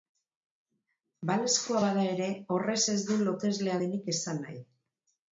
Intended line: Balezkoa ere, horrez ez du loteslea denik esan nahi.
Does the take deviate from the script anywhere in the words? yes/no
yes